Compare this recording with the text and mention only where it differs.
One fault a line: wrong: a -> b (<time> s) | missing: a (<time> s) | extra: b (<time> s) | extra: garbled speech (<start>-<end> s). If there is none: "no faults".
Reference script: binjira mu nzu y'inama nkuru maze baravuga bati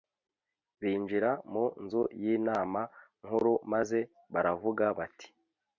no faults